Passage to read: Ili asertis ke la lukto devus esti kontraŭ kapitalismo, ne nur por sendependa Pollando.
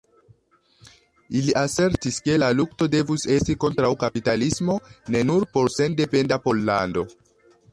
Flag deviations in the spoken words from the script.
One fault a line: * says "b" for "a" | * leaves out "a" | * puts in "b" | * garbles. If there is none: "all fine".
all fine